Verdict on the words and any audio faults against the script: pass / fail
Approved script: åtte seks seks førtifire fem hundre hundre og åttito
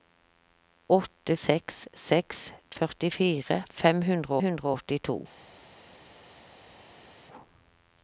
pass